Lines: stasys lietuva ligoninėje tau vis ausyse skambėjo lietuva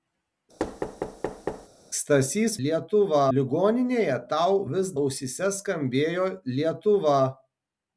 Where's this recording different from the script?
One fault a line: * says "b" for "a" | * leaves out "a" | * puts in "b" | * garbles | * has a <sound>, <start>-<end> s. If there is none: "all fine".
* has a thud, 0.6-1.7 s